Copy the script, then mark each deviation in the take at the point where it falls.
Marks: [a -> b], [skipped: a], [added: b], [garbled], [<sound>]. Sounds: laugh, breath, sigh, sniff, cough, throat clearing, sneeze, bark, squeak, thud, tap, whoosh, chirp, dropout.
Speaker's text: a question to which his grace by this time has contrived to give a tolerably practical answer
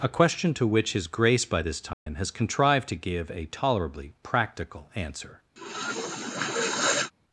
a question to which his grace by this time [dropout] has contrived to give a tolerably practical answer [sniff]